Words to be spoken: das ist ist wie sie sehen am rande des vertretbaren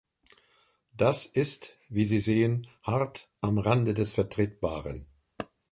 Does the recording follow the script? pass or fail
fail